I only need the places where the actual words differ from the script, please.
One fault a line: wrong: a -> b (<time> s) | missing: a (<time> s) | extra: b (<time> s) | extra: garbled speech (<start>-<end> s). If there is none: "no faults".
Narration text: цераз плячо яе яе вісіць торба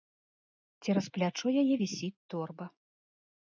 missing: яе (1.8 s)